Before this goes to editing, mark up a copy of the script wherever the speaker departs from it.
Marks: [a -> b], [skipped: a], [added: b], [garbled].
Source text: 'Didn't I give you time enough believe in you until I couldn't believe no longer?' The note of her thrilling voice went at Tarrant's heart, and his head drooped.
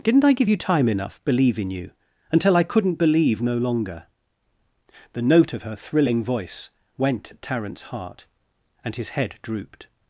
'Didn't I give you time enough believe in you until I couldn't believe no longer?' The note of her thrilling voice went at Tarrant's heart, and his head drooped.